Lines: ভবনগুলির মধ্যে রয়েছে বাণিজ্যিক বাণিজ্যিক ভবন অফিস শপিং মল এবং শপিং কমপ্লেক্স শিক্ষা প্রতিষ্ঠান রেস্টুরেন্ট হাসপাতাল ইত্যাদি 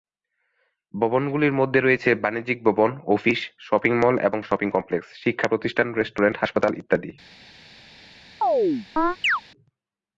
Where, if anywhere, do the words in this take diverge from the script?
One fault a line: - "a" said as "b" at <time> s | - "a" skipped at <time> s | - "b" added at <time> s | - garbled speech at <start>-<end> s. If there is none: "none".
- "বাণিজ্যিক" skipped at 2.6 s